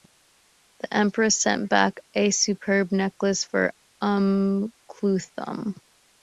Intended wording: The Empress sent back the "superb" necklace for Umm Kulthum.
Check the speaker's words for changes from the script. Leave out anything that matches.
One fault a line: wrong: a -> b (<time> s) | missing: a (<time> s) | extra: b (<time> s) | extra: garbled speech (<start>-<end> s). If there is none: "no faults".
wrong: the -> a (2.1 s)